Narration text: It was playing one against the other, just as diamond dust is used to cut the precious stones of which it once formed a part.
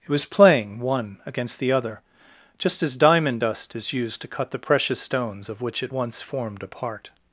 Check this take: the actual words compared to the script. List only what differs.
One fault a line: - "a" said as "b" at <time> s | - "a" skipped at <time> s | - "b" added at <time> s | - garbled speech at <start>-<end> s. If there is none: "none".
none